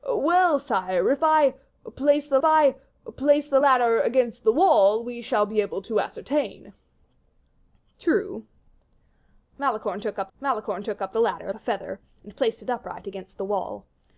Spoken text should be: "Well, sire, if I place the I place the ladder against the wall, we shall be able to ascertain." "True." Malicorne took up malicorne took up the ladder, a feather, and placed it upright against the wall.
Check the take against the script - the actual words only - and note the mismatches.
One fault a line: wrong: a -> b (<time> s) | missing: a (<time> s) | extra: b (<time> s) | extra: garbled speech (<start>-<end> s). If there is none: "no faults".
no faults